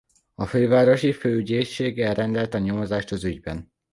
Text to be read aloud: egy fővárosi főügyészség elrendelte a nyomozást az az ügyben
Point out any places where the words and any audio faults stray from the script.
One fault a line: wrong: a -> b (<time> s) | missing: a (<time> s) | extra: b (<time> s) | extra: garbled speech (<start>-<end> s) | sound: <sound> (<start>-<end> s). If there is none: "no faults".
wrong: egy -> a (0.3 s)
missing: az (3.2 s)